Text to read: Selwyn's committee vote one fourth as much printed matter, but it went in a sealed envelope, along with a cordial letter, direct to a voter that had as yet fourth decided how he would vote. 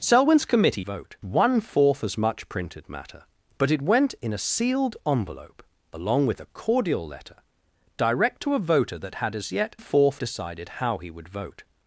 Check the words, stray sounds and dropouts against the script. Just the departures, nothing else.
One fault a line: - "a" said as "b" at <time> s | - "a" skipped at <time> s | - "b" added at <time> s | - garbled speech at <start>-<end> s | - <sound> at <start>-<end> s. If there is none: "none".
none